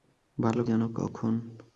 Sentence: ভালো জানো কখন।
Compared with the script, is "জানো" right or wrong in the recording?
right